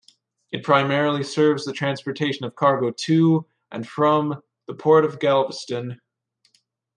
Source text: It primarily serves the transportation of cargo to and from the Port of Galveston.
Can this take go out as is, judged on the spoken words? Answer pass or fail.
pass